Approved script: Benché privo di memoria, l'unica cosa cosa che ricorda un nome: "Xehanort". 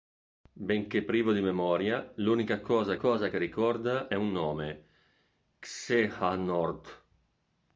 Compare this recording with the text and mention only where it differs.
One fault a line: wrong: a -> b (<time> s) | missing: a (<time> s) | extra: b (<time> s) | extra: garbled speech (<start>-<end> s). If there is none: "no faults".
no faults